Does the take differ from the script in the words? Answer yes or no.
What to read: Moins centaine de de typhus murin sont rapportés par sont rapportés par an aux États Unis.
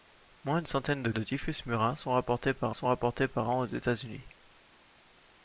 no